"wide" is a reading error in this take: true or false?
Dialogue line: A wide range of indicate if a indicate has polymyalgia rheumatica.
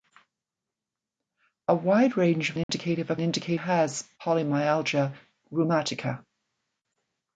false